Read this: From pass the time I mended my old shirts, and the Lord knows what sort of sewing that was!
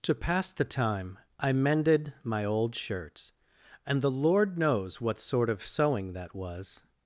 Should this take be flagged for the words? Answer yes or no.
yes